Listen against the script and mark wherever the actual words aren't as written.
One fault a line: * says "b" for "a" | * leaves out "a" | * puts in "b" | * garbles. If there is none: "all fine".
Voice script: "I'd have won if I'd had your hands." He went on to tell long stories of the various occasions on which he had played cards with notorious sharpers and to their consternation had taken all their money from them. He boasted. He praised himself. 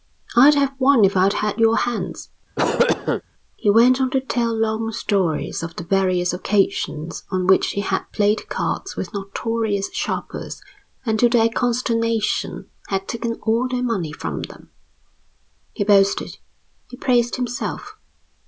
all fine